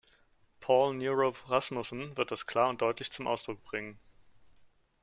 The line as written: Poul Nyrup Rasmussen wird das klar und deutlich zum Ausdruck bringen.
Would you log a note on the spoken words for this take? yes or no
no